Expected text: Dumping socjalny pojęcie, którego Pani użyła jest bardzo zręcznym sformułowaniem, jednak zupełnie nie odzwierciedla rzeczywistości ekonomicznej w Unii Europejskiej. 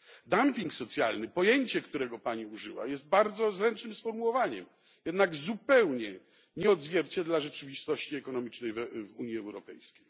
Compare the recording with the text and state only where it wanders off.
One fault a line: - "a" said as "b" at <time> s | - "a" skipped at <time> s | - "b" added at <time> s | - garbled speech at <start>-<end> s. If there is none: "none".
none